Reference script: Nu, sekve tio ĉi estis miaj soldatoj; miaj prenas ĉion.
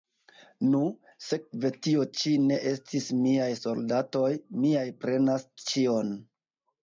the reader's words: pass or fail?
fail